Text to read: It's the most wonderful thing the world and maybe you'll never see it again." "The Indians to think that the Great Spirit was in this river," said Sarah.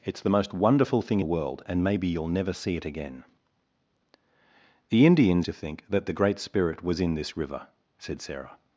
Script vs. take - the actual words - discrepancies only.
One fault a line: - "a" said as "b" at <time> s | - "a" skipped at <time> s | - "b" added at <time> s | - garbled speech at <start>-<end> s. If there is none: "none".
none